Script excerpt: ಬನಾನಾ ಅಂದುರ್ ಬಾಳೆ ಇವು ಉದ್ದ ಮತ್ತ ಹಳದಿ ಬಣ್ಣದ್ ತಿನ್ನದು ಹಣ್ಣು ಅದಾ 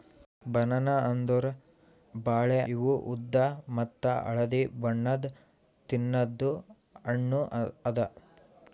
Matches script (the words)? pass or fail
pass